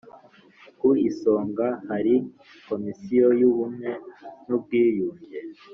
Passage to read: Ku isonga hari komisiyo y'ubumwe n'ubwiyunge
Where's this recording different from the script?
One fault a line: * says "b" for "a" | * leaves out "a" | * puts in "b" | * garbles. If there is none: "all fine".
all fine